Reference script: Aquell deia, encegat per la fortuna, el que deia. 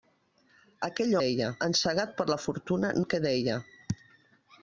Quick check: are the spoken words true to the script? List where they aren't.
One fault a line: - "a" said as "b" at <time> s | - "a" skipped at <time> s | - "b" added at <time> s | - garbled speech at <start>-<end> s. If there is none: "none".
none